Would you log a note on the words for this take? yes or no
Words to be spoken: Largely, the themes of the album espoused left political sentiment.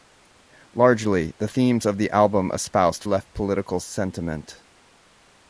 no